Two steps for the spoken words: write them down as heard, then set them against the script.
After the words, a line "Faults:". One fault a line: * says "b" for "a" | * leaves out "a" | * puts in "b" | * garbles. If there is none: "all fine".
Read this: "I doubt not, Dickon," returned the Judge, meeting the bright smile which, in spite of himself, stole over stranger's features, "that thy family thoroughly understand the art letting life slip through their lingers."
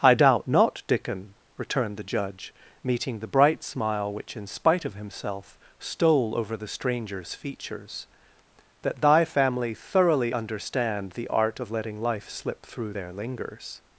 "I doubt not, Dickon," returned the Judge, meeting the bright smile which, in spite of himself, stole over the stranger's features, "that thy family thoroughly understand the art of letting life slip through their lingers."
Faults:
* puts in "the"
* puts in "of"